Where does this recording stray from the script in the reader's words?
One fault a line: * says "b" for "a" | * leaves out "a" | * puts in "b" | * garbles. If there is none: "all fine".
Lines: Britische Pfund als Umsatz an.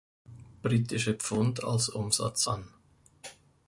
all fine